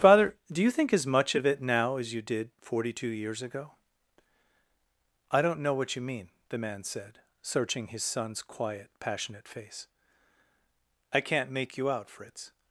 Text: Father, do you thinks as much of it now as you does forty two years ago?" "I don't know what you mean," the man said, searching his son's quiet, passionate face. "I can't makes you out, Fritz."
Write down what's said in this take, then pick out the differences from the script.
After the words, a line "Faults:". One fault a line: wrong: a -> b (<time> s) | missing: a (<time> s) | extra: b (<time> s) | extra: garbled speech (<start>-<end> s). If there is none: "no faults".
Father, do you think as much of it now as you did forty two years ago?" "I don't know what you mean," the man said, searching his son's quiet, passionate face. "I can't make you out, Fritz."
Faults:
wrong: thinks -> think (0.7 s)
wrong: does -> did (2.2 s)
wrong: makes -> make (11.5 s)